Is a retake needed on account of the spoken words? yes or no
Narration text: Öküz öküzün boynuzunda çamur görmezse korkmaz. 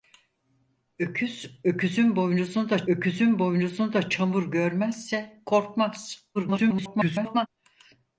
yes